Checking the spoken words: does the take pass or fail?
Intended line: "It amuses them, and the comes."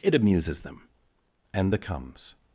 pass